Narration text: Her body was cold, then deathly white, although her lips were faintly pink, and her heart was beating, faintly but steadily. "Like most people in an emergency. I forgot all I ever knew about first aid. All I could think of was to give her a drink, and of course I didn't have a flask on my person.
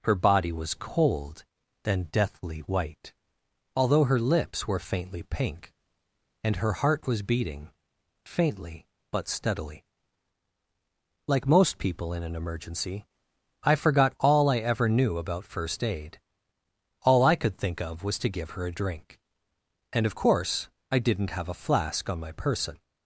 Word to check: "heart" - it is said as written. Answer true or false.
true